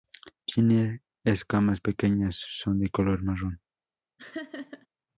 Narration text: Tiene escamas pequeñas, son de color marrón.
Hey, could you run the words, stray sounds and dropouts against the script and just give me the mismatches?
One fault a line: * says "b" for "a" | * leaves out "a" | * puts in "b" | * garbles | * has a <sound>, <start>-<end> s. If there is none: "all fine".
* has a laugh, 4.2-4.9 s